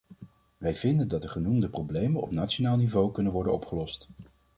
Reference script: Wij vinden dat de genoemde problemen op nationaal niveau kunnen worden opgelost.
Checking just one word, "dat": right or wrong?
right